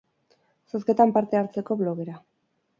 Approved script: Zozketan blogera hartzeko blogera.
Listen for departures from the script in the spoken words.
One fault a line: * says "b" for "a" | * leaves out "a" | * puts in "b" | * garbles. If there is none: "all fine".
* says "parte" for "blogera"